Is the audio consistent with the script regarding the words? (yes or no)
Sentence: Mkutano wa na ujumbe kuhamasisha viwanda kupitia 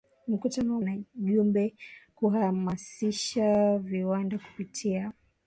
yes